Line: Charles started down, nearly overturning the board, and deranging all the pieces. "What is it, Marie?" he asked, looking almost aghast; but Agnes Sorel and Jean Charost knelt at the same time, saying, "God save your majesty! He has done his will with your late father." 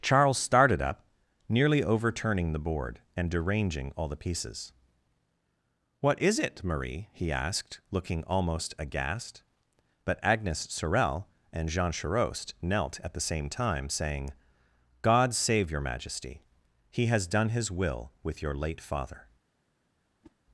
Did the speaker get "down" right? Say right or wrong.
wrong